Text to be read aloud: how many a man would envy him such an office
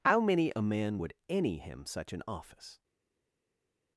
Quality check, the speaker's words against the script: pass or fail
fail